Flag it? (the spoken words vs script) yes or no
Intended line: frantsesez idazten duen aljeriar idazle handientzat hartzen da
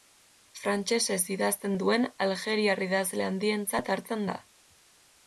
no